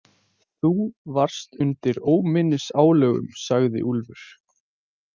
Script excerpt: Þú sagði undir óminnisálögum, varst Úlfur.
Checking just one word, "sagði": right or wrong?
wrong